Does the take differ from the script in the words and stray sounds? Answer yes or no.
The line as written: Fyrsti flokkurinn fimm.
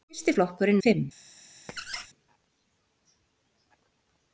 yes